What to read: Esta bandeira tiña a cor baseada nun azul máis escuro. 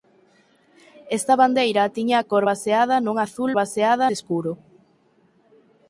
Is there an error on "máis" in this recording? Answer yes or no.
yes